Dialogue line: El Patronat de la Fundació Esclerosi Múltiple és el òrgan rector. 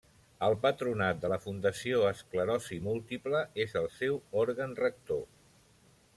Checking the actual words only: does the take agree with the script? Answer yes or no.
no